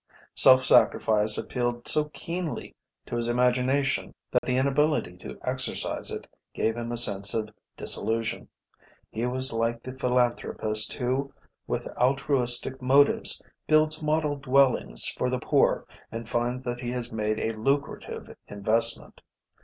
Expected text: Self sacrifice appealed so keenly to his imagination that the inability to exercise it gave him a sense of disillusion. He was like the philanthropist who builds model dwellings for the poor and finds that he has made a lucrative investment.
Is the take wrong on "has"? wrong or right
right